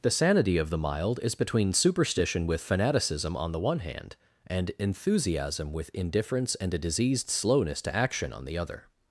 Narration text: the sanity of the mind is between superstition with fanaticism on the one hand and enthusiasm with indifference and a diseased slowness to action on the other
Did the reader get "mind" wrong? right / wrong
wrong